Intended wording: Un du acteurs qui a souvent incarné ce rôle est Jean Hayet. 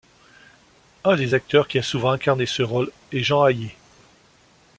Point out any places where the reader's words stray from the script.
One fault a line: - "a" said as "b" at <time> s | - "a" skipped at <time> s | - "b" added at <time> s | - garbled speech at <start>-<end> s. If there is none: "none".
- "du" said as "des" at 1.1 s